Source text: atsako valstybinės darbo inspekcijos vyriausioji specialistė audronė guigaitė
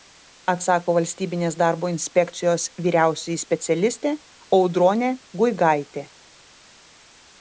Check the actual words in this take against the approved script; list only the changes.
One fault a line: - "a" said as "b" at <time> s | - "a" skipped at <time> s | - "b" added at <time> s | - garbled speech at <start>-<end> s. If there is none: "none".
none